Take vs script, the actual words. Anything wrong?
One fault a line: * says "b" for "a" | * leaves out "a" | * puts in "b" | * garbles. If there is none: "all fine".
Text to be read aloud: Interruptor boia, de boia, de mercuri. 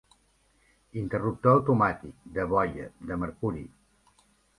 * says "automàtic" for "boia"